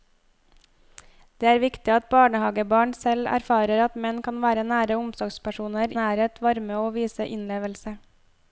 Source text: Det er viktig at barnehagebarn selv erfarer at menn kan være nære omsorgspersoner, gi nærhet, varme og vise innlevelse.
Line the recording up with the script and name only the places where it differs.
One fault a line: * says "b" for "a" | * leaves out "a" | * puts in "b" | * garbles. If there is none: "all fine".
* leaves out "gi"